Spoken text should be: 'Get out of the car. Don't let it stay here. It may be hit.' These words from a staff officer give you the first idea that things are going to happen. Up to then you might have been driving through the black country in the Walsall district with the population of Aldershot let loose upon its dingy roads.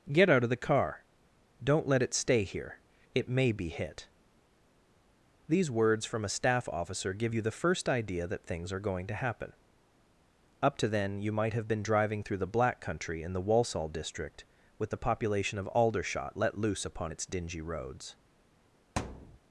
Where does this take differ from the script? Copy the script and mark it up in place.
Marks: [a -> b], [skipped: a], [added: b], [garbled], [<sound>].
'Get out of the car. Don't let it stay here. It may be hit.' These words from a staff officer give you the first idea that things are going to happen. Up to then you might have been driving through the black country in the Walsall district with the population of Aldershot let loose upon its dingy roads. [thud]